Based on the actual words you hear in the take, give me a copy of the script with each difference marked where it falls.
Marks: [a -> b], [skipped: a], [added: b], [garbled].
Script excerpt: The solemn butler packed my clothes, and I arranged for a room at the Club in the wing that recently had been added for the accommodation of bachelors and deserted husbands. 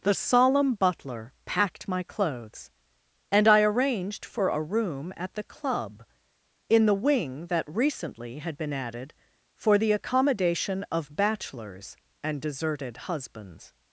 The solemn butler packed my clothes, and I arranged for a room at the Club in the wing that recently had been added for the accommodation of bachelors and deserted husbands.